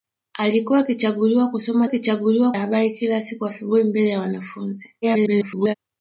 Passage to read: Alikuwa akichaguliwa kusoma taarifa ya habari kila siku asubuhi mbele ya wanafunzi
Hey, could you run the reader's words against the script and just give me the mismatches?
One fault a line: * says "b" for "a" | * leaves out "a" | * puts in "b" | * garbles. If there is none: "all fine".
* says "akichaguliwa" for "taarifa"
* garbles